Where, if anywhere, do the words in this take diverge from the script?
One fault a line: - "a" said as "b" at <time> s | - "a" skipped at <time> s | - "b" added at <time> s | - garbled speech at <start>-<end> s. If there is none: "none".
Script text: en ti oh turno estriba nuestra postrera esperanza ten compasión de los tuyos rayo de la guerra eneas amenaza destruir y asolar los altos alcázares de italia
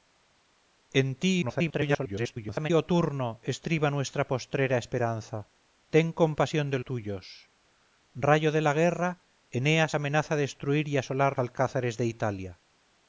- garbled speech at 1.4-2.7 s
- "los" skipped at 6.8 s
- "los altos" skipped at 11.3 s